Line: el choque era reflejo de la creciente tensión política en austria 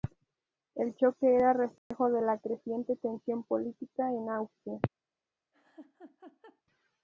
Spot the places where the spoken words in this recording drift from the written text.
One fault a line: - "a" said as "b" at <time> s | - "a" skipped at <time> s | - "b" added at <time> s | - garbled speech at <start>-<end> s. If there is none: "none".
none